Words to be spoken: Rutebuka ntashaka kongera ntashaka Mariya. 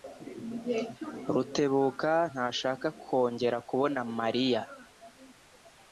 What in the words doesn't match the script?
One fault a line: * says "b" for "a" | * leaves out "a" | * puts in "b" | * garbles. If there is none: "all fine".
* says "kubona" for "ntashaka"